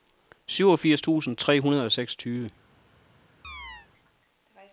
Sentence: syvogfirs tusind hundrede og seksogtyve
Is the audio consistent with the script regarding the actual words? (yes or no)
no